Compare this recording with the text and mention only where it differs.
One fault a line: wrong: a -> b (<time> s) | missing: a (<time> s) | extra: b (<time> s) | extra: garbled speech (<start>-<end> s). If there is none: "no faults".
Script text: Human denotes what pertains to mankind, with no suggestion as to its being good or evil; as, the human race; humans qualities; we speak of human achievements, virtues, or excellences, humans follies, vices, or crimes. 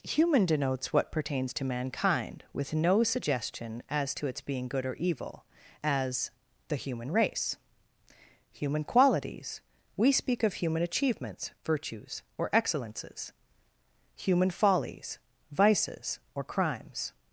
wrong: humans -> human (8.5 s)
wrong: humans -> human (14.1 s)